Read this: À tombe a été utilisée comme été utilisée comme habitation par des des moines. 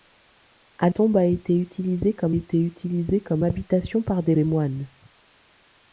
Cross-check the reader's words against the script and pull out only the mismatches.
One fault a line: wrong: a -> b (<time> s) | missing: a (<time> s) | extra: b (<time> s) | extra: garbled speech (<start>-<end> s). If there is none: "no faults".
no faults